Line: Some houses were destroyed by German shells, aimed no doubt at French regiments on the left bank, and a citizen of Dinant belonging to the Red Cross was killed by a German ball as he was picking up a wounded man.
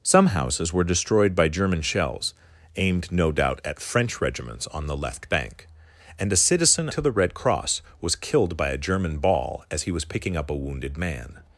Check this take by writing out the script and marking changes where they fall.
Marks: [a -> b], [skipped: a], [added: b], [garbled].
Some houses were destroyed by German shells, aimed no doubt at French regiments on the left bank, and a citizen [skipped: of Dinant belonging] to the Red Cross was killed by a German ball as he was picking up a wounded man.